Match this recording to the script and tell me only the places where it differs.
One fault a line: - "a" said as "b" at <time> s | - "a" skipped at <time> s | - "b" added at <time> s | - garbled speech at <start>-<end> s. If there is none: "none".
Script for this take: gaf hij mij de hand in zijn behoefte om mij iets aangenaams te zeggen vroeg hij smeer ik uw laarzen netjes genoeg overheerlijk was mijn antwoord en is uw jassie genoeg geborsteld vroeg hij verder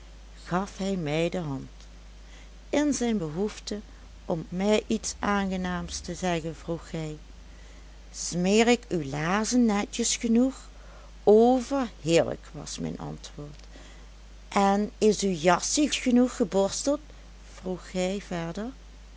none